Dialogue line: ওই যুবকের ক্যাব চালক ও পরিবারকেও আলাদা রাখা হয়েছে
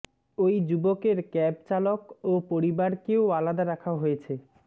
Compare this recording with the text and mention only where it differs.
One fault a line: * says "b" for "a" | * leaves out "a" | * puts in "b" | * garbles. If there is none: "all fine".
all fine